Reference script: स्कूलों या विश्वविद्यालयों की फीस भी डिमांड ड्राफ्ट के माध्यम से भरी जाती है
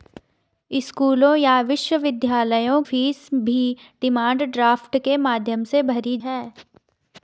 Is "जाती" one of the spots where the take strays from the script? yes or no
yes